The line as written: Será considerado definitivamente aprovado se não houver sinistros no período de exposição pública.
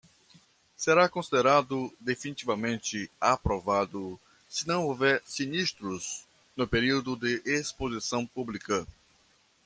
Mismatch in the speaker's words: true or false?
false